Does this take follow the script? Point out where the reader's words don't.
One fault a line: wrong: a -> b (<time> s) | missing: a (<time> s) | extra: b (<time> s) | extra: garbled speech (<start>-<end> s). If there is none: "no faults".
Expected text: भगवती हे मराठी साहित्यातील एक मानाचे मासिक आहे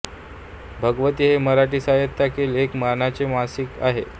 no faults